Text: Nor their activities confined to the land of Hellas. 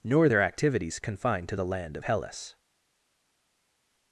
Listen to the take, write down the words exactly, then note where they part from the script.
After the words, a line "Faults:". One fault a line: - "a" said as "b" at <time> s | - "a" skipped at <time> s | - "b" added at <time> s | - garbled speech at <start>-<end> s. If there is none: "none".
Nor their activities confined to the land of Hellas.
Faults:
none